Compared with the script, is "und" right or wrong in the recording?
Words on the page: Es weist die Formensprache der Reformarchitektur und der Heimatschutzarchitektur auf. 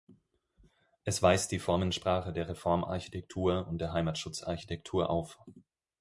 right